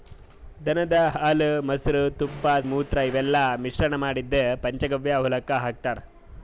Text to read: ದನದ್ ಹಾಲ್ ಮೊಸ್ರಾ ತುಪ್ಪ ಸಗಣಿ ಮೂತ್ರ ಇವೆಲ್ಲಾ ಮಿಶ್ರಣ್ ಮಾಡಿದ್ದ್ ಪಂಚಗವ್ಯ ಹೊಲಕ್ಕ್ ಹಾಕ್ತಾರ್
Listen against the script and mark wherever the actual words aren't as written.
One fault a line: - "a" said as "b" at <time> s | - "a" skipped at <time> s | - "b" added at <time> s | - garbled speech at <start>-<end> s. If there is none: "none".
- "ಸಗಣಿ" skipped at 2.5 s